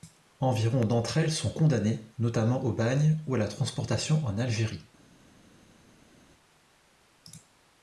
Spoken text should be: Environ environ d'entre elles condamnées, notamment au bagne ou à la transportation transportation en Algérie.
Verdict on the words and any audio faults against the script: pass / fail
fail